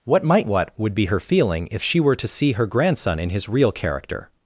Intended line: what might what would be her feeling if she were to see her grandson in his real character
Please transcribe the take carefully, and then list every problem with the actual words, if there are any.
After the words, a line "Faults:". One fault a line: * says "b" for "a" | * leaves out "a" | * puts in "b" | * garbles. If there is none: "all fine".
what might what would be her feeling if she were to see her grandson in his real character
Faults:
all fine